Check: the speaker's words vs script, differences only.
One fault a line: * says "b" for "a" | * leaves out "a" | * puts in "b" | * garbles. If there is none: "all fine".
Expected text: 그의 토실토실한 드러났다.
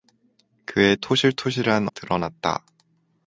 all fine